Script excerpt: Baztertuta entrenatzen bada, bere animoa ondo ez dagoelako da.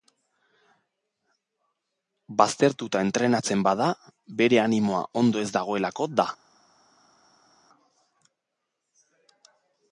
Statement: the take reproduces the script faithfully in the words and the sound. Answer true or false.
true